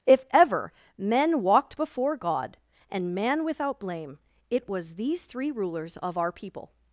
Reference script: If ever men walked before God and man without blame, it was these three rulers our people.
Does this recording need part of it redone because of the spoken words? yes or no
yes